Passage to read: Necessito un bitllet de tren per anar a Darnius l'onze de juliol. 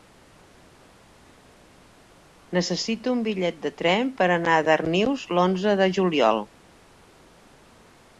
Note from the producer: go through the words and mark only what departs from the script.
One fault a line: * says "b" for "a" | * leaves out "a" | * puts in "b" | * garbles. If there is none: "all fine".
all fine